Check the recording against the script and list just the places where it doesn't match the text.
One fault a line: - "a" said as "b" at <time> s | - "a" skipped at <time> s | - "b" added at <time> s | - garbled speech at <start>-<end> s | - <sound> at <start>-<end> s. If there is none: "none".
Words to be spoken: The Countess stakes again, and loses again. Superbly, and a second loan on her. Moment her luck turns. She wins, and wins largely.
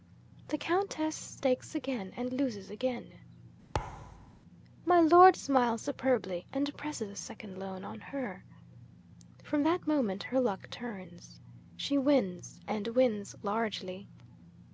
- thud at 3.7-4.4 s
- "My Lord smiles" added at 4.8 s
- "presses" added at 6.8 s
- "From that" added at 9.4 s